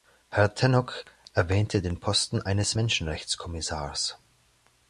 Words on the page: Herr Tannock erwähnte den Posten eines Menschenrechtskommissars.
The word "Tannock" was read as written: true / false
true